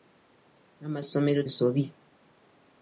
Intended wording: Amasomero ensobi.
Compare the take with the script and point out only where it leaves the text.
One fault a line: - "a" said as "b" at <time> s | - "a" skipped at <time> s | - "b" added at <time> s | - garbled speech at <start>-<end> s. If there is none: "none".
none